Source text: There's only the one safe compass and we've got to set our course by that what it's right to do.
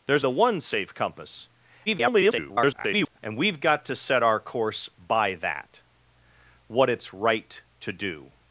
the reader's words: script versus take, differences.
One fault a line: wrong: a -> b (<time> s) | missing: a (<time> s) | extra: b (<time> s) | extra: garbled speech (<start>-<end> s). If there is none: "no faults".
missing: only (0.2 s)
extra: garbled speech (1.9-3.2 s)